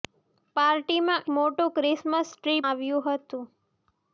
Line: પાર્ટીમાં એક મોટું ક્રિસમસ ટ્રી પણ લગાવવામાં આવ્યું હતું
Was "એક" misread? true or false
true